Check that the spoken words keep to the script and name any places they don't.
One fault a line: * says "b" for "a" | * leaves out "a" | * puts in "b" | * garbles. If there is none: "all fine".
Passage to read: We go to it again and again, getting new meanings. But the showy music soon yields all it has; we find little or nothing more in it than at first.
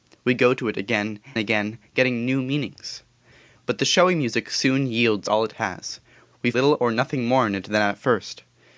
* leaves out "and"
* leaves out "find"